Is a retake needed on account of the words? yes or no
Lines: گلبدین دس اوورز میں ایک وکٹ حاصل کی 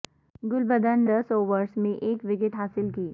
no